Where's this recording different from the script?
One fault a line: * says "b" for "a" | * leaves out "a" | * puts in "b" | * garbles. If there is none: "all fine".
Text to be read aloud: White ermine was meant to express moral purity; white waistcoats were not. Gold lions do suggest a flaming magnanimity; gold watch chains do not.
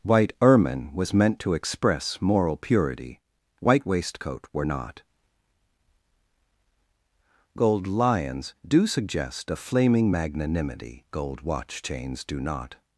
* says "waistcoat" for "waistcoats"